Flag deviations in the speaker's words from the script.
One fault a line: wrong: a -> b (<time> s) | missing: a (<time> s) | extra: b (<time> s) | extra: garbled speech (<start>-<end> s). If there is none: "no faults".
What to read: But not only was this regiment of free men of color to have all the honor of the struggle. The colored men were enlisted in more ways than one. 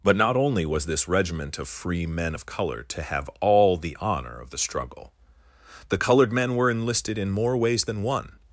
no faults